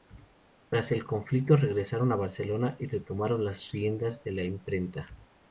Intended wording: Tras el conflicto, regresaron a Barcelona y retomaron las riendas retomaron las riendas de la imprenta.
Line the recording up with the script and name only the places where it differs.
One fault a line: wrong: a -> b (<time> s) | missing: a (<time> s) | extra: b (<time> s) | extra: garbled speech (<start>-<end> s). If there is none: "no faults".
missing: retomaron las riendas (4.2 s)